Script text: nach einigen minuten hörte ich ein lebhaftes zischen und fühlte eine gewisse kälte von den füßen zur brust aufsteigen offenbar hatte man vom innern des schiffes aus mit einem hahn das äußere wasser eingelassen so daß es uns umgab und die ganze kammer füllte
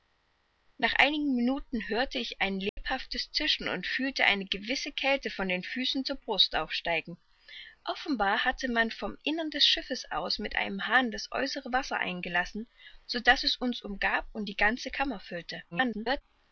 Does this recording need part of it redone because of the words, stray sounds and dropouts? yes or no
yes